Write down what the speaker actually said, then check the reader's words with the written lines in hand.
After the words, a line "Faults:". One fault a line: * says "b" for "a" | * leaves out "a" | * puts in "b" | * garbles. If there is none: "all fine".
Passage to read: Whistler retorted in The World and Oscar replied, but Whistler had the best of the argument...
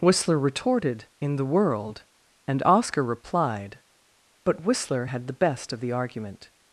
Whistler retorted in The World and Oscar replied, but Whistler had the best of the argument...
Faults:
all fine